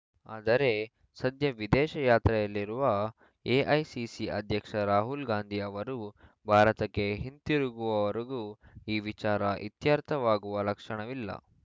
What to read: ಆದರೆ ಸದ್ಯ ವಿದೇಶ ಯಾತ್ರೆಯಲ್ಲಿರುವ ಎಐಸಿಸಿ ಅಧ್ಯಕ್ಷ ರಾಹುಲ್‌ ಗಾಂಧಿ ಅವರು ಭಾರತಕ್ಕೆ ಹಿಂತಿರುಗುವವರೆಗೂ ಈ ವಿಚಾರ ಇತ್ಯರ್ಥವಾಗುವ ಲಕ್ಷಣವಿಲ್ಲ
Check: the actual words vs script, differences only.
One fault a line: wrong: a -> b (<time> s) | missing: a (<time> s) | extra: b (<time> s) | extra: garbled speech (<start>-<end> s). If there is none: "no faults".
no faults